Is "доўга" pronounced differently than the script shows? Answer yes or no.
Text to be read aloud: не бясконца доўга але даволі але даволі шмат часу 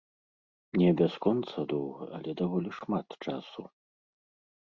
no